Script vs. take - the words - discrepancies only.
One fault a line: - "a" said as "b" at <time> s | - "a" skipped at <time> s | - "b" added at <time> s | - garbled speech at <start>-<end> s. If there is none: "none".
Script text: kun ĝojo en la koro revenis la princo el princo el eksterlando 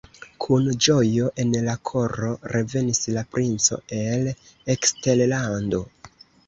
- "princo el" skipped at 4.3 s